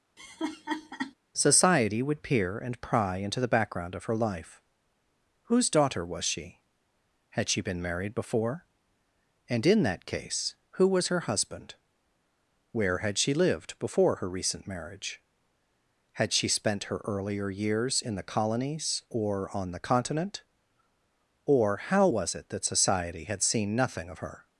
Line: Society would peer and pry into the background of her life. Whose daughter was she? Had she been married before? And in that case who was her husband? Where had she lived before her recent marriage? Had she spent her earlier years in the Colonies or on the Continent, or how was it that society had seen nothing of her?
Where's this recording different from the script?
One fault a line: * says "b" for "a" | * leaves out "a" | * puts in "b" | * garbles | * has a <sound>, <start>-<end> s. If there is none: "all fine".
* has a laugh, 0.2-1.1 s